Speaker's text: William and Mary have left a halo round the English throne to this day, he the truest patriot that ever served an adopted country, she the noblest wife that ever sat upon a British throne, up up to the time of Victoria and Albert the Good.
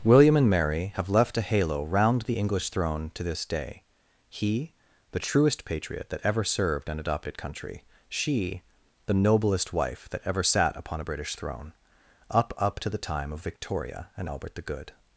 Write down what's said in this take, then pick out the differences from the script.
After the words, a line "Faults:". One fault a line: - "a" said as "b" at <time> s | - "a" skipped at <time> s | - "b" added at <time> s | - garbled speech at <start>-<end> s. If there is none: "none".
William and Mary have left a halo round the English throne to this day, he the truest patriot that ever served an adopted country, she the noblest wife that ever sat upon a British throne, up up to the time of Victoria and Albert the Good.
Faults:
none